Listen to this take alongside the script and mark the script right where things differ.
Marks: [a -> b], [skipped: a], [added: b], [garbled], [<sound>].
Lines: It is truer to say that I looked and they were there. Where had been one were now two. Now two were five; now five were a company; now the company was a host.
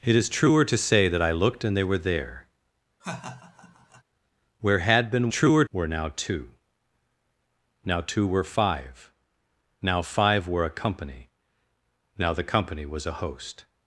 It is truer to say that I looked and they were there. [laugh] Where had been [one -> truer] were now two. Now two were five; now five were a company; now the company was a host.